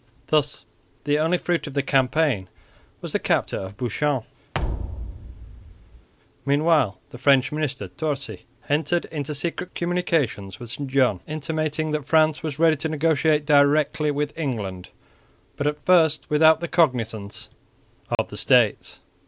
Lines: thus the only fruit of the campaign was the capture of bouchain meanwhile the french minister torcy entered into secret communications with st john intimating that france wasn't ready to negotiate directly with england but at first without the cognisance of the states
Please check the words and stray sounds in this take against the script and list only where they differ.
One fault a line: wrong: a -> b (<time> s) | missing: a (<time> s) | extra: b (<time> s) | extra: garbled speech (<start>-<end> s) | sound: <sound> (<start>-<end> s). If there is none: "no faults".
sound: thud (4.5-6.1 s)
wrong: wasn't -> was (12.4 s)
sound: dropout (18.1-18.2 s)